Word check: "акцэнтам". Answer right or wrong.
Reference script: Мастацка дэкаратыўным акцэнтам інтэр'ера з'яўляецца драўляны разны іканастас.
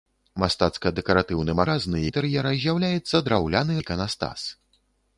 wrong